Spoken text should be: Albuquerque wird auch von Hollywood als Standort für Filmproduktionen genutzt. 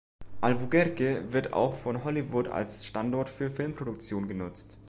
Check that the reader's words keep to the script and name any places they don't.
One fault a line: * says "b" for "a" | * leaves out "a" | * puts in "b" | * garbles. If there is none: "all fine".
all fine